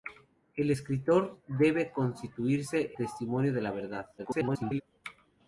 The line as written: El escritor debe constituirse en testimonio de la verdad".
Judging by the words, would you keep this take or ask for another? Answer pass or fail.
fail